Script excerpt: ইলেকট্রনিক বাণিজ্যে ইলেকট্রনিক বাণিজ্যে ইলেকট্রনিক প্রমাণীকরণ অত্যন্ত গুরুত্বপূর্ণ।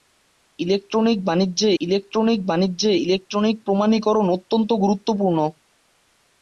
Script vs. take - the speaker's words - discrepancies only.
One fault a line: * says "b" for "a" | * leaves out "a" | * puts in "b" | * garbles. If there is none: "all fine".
all fine